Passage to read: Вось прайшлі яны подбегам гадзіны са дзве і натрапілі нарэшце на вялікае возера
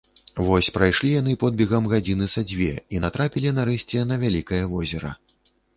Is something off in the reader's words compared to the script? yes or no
no